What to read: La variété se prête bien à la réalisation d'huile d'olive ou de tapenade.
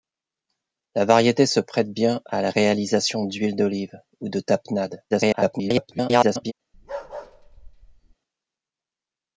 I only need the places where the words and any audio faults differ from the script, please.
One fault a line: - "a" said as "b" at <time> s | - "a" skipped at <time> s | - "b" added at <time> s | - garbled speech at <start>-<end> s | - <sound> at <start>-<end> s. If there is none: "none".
- garbled speech at 5.1-6.5 s
- bark at 6.7-8.2 s